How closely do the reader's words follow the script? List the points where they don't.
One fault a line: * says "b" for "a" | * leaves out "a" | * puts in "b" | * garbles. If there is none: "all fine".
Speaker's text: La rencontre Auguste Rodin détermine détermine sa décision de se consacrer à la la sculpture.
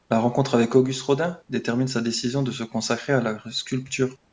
* puts in "avec"
* leaves out "détermine"
* leaves out "la"